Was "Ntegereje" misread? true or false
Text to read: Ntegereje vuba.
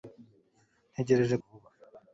false